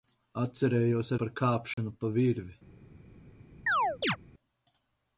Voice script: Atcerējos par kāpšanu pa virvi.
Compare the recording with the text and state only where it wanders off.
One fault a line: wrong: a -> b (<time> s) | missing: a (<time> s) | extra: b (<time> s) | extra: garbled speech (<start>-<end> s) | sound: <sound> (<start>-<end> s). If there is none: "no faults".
sound: dropout (1.7-1.8 s)
sound: chirp (3.7-4.2 s)